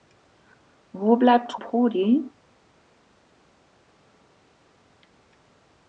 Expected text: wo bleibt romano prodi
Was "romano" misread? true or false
true